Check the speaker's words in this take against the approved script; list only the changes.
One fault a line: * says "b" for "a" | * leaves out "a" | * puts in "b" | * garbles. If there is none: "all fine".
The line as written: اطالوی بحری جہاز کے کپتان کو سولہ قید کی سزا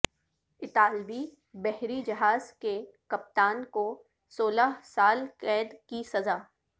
* puts in "سال"